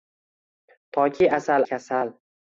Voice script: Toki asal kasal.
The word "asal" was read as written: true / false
true